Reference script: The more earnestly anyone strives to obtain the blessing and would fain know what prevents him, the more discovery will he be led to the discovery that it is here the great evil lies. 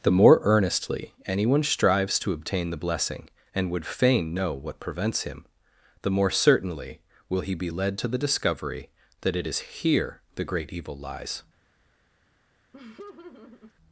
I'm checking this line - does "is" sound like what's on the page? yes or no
yes